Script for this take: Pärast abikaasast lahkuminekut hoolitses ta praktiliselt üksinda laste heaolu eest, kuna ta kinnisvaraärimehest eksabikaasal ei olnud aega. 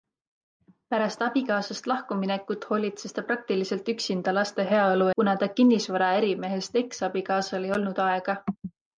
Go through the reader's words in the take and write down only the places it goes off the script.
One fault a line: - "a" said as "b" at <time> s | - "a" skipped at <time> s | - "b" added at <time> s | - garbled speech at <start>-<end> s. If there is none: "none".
- "eest" skipped at 5.1 s